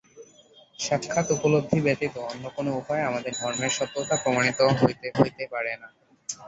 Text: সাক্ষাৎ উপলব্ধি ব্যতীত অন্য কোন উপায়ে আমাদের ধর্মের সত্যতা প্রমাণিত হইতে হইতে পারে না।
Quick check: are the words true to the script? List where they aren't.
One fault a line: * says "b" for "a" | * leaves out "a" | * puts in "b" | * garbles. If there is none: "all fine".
all fine